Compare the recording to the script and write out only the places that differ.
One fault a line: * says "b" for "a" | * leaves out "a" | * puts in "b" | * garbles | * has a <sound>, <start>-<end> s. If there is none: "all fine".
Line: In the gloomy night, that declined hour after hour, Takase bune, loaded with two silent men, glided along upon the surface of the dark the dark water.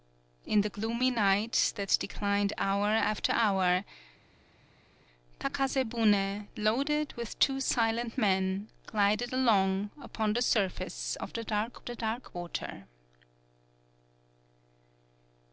all fine